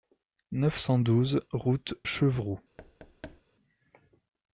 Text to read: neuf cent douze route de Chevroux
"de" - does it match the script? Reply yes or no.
no